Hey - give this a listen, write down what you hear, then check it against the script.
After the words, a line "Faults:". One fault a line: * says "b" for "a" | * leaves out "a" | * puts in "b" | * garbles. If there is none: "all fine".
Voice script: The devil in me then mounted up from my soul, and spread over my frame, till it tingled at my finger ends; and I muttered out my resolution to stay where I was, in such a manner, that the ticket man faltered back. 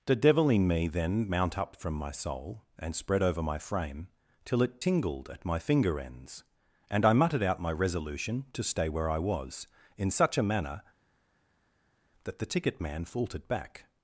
The devil in me then mount up from my soul, and spread over my frame, till it tingled at my finger ends; and I muttered out my resolution to stay where I was, in such a manner, that the ticket man faltered back.
Faults:
* says "mount" for "mounted"